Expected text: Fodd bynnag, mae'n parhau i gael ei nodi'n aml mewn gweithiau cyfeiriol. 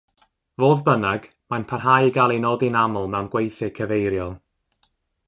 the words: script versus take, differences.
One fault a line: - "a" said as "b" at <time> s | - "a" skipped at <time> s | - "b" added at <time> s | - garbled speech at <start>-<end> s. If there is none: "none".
none